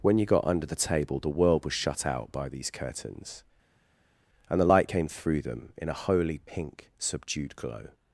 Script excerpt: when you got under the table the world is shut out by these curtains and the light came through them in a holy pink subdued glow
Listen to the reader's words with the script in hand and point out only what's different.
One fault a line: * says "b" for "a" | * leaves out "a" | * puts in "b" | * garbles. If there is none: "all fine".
* says "was" for "is"